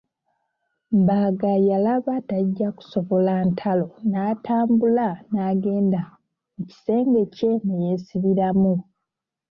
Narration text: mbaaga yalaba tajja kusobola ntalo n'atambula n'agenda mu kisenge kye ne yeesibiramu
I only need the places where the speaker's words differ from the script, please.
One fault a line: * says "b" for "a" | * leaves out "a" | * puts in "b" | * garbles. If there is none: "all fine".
all fine